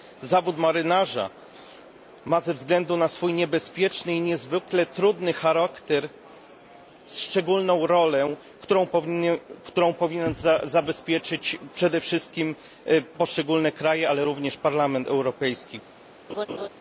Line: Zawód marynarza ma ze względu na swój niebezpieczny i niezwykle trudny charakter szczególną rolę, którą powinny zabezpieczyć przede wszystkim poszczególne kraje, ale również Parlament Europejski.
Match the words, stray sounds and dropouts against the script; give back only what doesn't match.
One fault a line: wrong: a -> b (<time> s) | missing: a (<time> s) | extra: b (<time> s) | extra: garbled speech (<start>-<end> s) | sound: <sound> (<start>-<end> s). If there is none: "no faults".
sound: laugh (16.3-16.7 s)